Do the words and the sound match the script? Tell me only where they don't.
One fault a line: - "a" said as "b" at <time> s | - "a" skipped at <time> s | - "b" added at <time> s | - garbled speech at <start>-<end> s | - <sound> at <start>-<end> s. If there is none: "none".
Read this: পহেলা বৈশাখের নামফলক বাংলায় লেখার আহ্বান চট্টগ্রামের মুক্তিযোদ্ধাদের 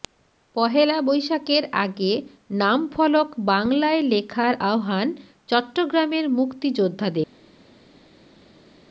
- "আগে" added at 1.8 s